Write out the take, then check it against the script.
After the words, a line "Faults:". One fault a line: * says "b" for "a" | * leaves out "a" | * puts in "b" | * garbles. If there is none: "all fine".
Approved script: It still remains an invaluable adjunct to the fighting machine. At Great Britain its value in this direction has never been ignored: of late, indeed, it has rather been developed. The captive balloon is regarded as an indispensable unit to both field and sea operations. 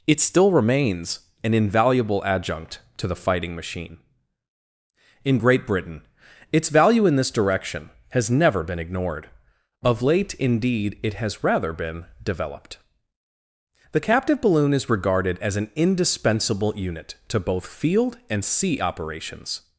It still remains an invaluable adjunct to the fighting machine. In Great Britain its value in this direction has never been ignored: of late, indeed, it has rather been developed. The captive balloon is regarded as an indispensable unit to both field and sea operations.
Faults:
* says "In" for "At"